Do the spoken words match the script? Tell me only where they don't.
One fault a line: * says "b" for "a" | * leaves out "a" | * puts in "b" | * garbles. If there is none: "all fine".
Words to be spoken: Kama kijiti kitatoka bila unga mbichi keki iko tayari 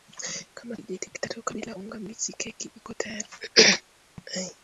all fine